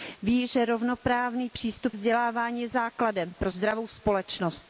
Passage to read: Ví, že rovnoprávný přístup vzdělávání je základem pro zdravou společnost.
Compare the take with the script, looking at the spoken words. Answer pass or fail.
pass